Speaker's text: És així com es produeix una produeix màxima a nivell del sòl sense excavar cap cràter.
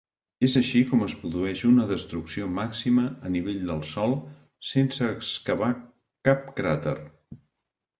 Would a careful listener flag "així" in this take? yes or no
no